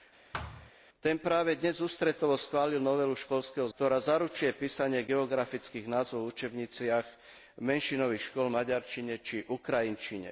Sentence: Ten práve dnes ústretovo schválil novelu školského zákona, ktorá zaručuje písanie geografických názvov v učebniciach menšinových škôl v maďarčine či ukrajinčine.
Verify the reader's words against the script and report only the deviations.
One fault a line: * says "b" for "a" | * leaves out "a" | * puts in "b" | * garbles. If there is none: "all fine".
* leaves out "zákona"